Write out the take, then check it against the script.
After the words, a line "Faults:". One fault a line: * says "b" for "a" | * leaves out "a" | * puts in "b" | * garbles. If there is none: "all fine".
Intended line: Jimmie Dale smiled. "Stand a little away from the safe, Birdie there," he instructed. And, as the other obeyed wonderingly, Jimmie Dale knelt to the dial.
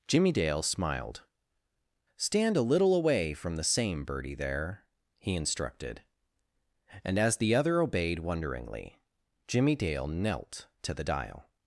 Jimmie Dale smiled. "Stand a little away from the same, Birdie there," he instructed. And, as the other obeyed wonderingly, Jimmie Dale knelt to the dial.
Faults:
* says "same" for "safe"